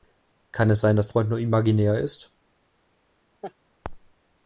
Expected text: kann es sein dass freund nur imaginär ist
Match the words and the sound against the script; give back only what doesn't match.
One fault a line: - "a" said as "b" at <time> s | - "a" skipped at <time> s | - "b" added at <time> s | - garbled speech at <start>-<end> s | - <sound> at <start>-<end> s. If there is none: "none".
- laugh at 3.4-3.5 s